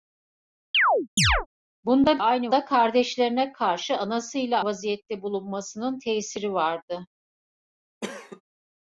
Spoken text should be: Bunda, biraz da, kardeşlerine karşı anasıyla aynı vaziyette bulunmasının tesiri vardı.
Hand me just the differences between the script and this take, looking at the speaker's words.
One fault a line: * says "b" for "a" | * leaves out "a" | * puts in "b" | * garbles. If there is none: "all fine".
* says "aynı" for "biraz"
* leaves out "aynı"